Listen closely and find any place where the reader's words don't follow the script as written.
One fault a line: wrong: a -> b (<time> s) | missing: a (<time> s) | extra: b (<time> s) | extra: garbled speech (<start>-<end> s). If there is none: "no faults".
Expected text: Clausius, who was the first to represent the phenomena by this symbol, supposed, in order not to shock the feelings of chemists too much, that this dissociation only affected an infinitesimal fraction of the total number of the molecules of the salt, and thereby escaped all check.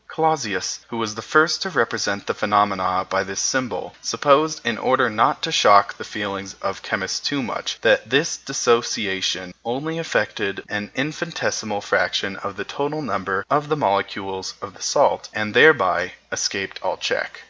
no faults